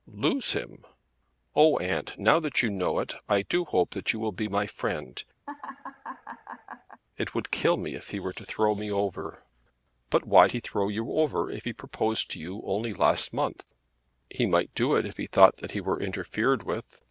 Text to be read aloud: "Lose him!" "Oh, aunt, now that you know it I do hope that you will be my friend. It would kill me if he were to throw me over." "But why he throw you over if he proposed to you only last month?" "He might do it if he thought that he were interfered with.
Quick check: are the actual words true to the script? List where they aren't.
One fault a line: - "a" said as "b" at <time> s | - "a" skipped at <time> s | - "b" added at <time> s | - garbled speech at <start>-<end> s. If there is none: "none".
none